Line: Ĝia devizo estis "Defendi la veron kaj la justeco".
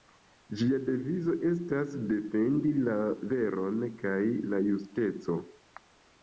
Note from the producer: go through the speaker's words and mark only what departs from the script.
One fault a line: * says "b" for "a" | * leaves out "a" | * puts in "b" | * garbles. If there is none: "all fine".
* says "estas" for "estis"